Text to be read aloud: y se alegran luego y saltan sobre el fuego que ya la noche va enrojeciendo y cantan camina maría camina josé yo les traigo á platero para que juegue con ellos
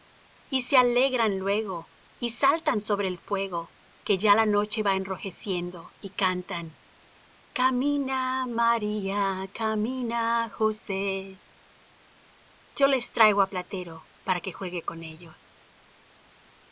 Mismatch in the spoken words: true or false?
false